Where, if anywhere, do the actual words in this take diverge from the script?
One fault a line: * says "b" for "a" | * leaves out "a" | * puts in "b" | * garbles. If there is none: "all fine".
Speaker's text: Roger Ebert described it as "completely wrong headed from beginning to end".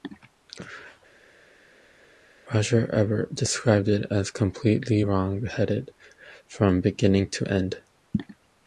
all fine